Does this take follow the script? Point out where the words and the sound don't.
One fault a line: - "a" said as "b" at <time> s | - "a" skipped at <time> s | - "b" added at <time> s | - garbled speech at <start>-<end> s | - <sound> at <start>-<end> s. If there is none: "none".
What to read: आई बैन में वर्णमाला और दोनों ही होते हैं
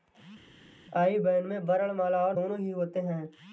none